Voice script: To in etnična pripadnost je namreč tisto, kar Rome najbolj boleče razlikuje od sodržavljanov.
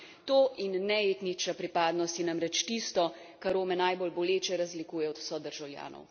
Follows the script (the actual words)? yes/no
no